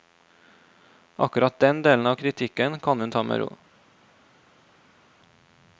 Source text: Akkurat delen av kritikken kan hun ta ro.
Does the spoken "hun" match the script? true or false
true